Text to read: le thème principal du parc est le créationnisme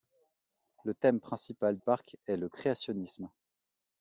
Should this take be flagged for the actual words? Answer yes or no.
yes